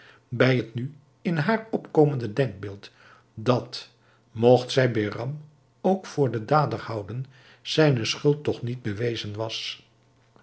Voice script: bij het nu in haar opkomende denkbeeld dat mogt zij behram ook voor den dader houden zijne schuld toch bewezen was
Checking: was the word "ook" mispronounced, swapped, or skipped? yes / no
no